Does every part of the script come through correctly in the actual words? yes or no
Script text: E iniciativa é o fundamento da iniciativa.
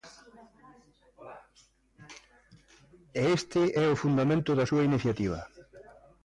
no